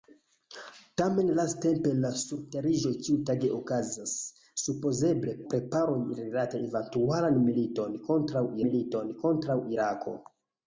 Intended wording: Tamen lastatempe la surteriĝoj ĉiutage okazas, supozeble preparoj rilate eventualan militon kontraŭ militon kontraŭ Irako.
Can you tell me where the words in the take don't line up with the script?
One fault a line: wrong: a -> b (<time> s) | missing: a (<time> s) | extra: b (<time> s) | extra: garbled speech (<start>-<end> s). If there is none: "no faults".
no faults